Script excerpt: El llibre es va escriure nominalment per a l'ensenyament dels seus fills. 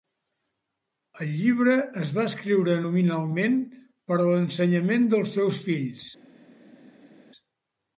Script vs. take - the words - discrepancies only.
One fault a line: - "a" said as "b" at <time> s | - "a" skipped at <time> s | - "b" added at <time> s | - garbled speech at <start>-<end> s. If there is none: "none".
none